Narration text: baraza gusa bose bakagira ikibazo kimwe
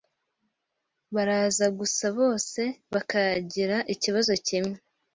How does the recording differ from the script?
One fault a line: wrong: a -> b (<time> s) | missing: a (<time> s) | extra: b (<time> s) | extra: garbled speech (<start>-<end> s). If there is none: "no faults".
no faults